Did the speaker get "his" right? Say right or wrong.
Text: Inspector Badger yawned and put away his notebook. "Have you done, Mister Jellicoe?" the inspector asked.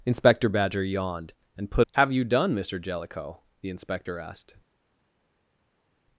wrong